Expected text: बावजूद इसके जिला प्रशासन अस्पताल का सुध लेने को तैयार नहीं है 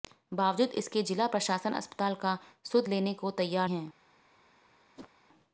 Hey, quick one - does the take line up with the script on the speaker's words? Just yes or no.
no